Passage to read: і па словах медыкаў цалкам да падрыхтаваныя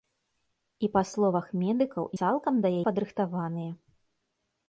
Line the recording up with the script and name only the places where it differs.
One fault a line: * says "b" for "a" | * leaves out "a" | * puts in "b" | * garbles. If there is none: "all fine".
all fine